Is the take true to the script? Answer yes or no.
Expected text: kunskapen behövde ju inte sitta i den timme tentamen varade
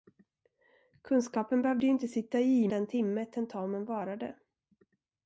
yes